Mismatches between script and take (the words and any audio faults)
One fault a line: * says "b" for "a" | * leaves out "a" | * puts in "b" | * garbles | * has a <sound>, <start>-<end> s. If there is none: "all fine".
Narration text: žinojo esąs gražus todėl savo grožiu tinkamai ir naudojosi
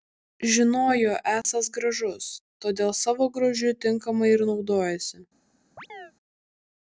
* has a dropout, 1.4-1.4 s
* has a chirp, 5.8-6.1 s